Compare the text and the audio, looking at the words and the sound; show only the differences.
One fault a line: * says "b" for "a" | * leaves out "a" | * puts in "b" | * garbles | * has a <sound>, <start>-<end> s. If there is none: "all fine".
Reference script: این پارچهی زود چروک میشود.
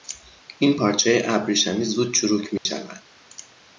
* puts in "ابریشمی"
* has a dropout, 2.6-2.7 s